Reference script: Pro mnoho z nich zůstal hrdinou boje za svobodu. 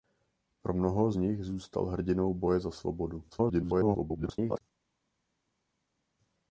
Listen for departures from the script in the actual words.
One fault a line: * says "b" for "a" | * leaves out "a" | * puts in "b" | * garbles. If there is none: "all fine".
* garbles